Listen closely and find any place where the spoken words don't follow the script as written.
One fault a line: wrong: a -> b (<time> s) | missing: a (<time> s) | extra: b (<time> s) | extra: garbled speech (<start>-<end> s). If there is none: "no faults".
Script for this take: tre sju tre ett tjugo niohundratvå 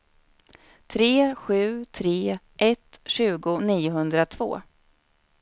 no faults